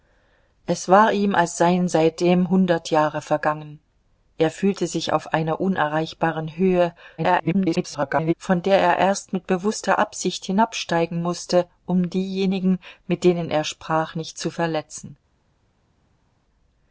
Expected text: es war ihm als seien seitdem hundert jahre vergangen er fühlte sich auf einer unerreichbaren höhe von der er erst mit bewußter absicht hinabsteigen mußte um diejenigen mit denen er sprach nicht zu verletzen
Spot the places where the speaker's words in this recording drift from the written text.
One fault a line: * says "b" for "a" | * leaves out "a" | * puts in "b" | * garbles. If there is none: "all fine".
* garbles